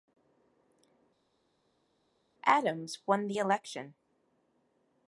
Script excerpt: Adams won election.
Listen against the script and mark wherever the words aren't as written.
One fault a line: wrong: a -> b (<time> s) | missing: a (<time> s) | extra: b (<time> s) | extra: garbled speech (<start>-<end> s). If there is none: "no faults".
extra: the (3.3 s)